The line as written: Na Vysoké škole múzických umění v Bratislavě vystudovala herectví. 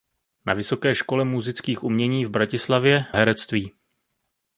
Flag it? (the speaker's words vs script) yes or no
yes